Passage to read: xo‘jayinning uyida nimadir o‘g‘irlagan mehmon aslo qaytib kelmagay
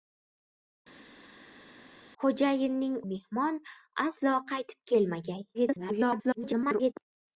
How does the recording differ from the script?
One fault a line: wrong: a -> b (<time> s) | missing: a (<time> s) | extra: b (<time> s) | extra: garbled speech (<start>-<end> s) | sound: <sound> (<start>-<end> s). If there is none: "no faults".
missing: uyida nimadir o‘g‘irlagan (2.9 s)
extra: garbled speech (5.5-6.9 s)